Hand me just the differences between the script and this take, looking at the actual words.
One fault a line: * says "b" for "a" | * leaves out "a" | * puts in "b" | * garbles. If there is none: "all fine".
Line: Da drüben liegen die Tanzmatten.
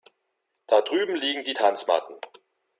all fine